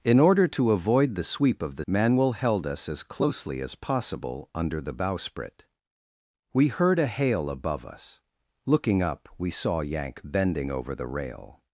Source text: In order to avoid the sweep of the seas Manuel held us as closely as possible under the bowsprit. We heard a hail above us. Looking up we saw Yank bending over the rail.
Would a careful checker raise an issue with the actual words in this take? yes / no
yes